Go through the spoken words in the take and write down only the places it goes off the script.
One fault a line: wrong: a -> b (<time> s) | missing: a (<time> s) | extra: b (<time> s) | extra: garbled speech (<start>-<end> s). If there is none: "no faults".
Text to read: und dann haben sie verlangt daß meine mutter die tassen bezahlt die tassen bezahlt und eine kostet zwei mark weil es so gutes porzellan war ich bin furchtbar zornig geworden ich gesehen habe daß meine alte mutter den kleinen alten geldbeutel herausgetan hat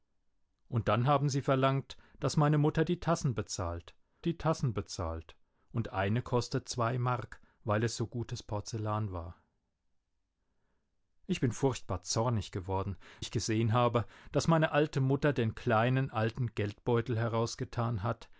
no faults